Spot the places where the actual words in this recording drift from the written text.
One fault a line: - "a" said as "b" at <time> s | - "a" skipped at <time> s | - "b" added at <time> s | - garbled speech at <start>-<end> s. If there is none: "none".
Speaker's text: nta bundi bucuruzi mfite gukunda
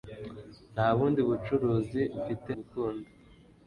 none